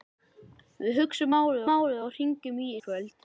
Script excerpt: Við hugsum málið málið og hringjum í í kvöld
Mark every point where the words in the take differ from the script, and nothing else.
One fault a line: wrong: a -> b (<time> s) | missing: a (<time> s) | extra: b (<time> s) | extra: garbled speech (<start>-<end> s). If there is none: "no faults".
no faults